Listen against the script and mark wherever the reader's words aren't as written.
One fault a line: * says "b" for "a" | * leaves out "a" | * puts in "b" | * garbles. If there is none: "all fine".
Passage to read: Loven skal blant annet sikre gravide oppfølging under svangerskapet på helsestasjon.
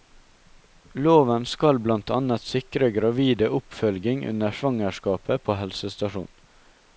all fine